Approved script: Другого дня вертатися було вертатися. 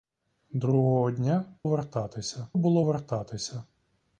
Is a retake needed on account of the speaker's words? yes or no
no